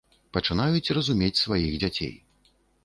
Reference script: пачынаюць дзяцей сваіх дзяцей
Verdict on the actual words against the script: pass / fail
fail